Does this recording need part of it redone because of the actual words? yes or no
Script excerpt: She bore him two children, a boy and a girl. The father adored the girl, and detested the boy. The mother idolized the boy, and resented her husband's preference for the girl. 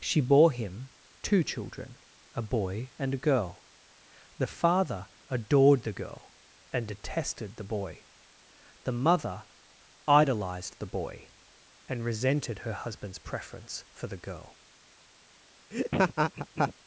no